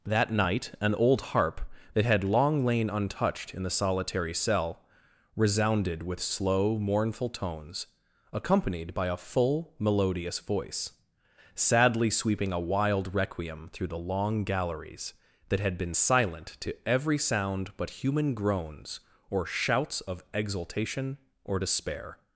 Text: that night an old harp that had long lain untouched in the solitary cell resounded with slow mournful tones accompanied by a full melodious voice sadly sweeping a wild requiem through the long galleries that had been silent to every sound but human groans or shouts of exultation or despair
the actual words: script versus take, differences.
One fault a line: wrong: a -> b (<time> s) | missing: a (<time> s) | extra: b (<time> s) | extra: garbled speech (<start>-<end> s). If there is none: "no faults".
no faults